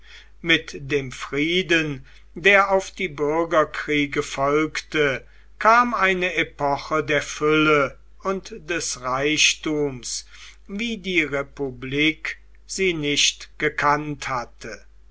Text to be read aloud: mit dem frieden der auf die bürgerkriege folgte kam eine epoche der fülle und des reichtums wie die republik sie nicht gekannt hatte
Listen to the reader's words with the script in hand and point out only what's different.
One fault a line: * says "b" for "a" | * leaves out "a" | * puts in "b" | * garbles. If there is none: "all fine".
all fine